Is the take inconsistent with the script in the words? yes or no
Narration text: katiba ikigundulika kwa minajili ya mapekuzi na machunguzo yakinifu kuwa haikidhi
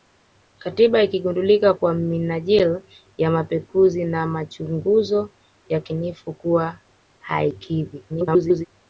yes